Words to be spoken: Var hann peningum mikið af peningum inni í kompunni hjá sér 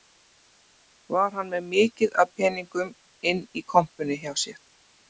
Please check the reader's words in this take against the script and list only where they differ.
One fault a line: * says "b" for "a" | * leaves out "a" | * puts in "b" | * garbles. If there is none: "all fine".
* says "með" for "peningum"